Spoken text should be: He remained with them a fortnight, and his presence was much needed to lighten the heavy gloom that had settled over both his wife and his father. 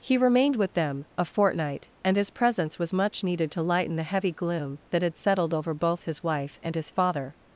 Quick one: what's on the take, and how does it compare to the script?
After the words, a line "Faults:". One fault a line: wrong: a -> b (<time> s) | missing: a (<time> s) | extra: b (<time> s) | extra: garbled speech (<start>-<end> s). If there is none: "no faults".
He remained with them a fortnight, and his presence was much needed to lighten the heavy gloom that had settled over both his wife and his father.
Faults:
no faults